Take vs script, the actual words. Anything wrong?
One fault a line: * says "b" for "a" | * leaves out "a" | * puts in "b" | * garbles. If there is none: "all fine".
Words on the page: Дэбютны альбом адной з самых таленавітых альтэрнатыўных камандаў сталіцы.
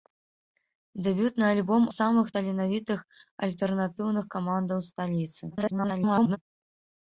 * leaves out "адной"
* garbles